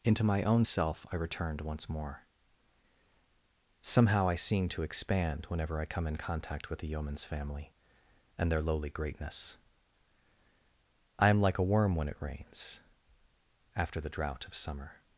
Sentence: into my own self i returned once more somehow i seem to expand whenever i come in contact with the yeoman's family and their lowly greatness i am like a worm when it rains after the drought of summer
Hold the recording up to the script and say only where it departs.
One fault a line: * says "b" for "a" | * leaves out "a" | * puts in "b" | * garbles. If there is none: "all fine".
all fine